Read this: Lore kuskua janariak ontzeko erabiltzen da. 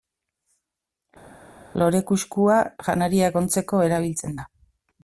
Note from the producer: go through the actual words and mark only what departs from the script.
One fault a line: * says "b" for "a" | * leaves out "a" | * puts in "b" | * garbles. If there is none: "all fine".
all fine